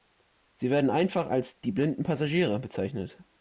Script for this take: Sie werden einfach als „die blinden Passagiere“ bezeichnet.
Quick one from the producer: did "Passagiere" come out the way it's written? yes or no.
yes